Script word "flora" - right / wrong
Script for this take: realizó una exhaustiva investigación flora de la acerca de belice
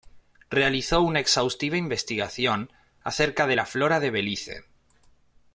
wrong